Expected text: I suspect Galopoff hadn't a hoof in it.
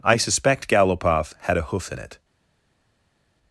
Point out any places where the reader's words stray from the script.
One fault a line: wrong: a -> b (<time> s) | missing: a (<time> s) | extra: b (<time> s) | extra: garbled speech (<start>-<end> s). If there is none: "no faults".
wrong: hadn't -> had (1.4 s)